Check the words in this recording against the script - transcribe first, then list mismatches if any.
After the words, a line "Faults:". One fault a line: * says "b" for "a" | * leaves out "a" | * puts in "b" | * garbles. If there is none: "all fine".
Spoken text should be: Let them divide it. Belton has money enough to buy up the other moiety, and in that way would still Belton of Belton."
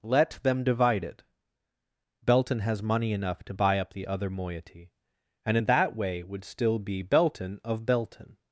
Let them divide it. Belton has money enough to buy up the other moiety, and in that way would still be Belton of Belton."
Faults:
* puts in "be"